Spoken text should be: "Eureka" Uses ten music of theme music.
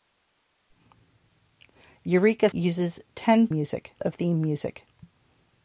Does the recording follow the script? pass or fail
pass